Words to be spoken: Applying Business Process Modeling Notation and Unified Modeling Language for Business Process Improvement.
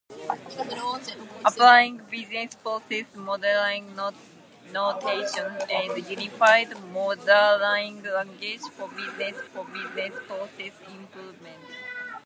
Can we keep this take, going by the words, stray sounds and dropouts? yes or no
no